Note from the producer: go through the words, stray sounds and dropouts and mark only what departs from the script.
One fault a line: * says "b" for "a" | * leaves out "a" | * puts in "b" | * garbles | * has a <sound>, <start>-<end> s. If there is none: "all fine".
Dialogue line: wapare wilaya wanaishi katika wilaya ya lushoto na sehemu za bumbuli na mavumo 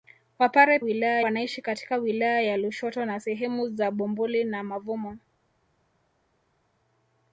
all fine